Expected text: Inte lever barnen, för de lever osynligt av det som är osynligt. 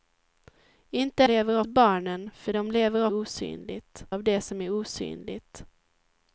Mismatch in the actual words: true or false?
false